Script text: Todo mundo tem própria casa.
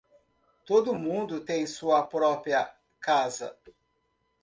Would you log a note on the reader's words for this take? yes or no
yes